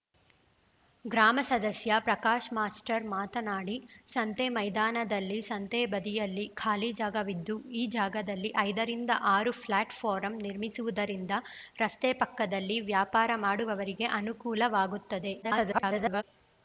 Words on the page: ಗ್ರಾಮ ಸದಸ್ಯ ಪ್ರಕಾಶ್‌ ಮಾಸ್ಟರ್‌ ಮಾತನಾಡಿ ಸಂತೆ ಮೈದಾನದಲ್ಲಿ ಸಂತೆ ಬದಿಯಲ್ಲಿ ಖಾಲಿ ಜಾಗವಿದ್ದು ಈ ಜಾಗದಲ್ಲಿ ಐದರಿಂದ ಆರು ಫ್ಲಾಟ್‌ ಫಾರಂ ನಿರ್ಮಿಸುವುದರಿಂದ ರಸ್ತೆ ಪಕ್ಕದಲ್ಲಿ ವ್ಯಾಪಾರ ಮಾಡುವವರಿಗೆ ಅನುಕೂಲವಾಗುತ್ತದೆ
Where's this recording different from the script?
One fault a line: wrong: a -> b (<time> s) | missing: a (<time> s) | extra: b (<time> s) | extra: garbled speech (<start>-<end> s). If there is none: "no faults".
extra: garbled speech (15.4-16.2 s)